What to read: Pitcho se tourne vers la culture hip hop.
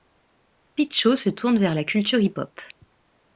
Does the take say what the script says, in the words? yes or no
yes